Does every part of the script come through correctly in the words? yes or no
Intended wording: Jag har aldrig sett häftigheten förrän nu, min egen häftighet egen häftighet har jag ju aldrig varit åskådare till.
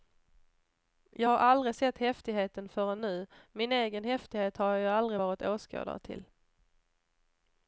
no